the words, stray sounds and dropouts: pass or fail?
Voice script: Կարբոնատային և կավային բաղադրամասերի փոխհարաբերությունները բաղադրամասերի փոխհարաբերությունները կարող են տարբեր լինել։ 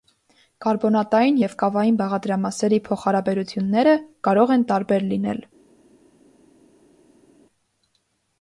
fail